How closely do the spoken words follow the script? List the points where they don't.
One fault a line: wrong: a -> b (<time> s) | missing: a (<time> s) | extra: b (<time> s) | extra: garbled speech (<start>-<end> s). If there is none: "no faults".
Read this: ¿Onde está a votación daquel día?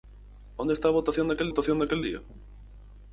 extra: votación daquel (1.5 s)